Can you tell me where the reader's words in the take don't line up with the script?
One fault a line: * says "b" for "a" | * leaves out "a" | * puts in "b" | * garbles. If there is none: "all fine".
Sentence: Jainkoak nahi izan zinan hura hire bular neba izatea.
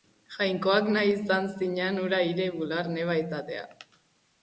all fine